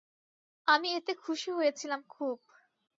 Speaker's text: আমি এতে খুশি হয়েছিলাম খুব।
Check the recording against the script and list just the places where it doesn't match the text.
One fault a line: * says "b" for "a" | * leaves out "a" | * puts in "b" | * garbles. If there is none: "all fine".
all fine